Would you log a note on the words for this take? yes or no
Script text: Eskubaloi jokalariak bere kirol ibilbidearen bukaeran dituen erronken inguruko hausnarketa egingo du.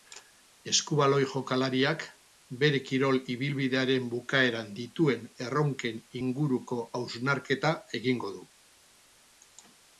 no